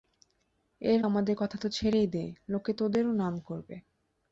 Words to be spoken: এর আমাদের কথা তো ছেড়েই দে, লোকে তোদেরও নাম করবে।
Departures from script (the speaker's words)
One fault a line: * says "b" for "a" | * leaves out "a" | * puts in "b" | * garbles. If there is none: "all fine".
all fine